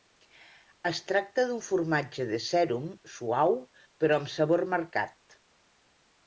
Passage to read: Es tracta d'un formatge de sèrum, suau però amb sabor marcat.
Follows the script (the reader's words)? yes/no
yes